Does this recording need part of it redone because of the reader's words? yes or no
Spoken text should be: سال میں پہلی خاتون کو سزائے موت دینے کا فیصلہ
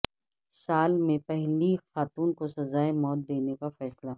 no